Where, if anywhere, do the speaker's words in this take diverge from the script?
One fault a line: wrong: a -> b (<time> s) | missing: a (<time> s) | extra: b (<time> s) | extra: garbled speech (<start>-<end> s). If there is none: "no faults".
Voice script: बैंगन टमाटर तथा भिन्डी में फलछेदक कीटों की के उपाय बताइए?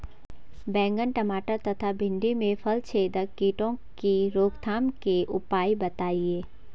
extra: रोकथाम (4.3 s)